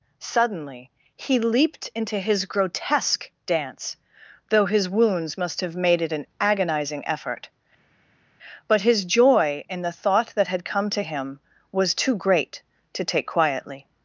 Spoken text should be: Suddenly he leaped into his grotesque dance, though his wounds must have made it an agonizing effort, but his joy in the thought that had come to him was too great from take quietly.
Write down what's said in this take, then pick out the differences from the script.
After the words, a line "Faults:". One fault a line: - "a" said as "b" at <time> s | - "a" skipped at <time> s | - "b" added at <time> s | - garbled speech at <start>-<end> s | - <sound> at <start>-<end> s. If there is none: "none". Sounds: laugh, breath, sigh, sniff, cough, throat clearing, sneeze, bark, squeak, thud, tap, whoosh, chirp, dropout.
Suddenly he leaped into his grotesque dance, though his wounds must have made it an agonizing effort, but his joy in the thought that had come to him was too great to take quietly.
Faults:
- "from" said as "to" at 12.9 s